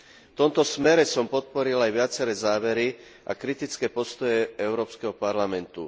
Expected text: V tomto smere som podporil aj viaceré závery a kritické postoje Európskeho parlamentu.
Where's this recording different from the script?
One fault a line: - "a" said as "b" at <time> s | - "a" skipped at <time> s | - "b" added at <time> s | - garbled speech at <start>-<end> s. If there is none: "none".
none